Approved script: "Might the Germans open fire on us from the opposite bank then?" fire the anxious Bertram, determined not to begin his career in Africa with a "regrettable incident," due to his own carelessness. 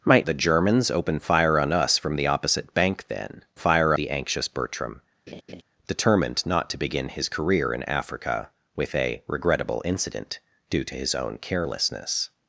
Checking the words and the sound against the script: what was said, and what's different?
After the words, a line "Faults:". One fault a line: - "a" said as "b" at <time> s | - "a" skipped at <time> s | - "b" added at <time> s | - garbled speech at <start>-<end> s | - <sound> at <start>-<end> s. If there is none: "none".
"Might the Germans open fire on us from the opposite bank then?" fire the anxious Bertram, determined not to begin his career in Africa with a "regrettable incident," due to his own carelessness.
Faults:
- laugh at 5.3-5.6 s